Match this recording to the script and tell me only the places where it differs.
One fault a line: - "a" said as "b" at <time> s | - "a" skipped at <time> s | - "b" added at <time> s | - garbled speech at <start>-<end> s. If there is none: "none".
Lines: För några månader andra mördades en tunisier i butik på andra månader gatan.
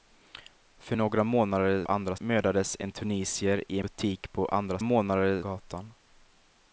none